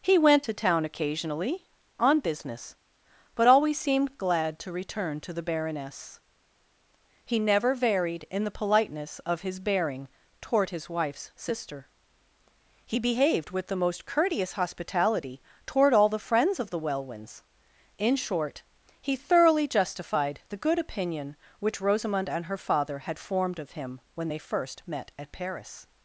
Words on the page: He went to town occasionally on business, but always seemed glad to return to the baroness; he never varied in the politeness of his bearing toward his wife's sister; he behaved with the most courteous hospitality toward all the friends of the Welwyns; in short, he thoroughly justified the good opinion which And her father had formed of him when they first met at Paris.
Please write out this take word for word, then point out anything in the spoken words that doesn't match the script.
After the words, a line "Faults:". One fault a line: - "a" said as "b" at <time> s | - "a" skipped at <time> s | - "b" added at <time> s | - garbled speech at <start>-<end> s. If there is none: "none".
He went to town occasionally on business, but always seemed glad to return to the baroness; he never varied in the politeness of his bearing toward his wife's sister; he behaved with the most courteous hospitality toward all the friends of the Welwyns; in short, he thoroughly justified the good opinion which Rosamond and her father had formed of him when they first met at Paris.
Faults:
- "Rosamond" added at 21.8 s